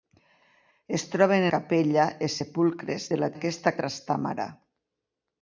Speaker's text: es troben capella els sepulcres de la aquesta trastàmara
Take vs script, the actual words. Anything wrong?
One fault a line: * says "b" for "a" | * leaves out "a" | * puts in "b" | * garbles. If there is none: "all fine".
all fine